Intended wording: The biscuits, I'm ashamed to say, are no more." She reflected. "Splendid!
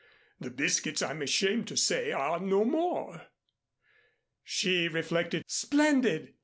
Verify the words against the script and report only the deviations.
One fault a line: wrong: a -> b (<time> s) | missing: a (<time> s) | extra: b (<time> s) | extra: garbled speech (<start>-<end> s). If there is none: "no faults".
no faults